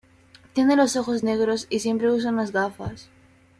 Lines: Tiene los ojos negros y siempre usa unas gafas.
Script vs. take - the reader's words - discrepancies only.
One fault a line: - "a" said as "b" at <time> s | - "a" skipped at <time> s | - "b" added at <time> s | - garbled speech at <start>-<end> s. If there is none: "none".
none